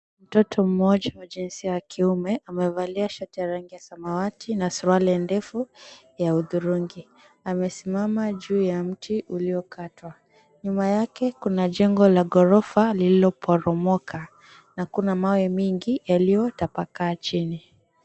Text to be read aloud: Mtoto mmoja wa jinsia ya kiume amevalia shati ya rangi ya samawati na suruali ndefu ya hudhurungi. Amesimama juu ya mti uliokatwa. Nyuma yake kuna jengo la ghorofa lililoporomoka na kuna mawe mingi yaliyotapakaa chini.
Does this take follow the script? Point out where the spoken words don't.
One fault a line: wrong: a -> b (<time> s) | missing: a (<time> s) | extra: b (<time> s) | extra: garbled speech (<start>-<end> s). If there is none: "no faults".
no faults